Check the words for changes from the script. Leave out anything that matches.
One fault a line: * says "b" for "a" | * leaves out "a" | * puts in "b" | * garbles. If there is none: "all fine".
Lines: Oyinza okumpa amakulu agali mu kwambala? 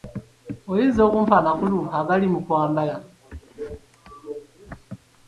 all fine